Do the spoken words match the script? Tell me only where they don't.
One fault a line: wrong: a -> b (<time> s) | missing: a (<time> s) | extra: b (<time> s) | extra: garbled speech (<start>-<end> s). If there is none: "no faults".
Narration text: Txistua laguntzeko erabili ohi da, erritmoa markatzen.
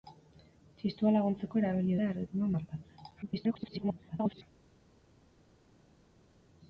missing: ohi (2.0 s)
extra: garbled speech (3.2-4.4 s)